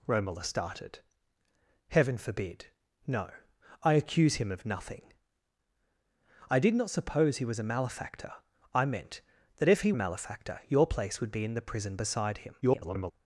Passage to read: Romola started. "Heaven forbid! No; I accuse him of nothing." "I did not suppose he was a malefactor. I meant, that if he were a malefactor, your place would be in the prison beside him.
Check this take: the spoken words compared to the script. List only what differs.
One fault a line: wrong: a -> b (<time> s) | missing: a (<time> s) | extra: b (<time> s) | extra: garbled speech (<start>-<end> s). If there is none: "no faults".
missing: were (9.9 s)
extra: garbled speech (12.6-13.1 s)